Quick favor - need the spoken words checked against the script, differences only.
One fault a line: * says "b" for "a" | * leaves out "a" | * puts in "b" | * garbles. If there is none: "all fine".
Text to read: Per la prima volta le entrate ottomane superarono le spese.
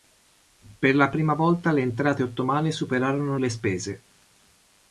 all fine